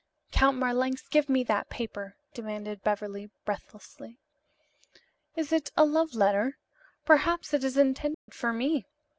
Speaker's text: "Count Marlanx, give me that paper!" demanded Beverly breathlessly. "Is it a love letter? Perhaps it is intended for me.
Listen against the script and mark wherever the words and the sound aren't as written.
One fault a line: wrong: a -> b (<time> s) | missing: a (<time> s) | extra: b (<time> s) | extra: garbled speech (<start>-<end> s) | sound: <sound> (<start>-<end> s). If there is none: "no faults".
sound: dropout (8.1-8.3 s)